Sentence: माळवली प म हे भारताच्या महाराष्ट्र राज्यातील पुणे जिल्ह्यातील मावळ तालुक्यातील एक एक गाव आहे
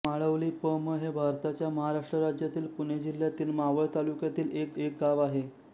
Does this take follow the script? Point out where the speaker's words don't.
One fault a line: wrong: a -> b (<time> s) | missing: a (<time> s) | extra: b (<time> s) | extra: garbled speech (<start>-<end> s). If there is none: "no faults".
no faults